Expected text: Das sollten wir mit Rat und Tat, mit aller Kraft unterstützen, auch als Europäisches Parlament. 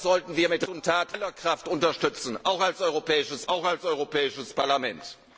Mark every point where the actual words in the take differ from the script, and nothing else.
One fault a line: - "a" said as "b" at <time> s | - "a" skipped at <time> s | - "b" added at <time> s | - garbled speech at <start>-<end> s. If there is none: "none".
- "Rat" skipped at 0.7 s
- "mit" skipped at 1.2 s
- "auch als Europäisches" added at 3.5 s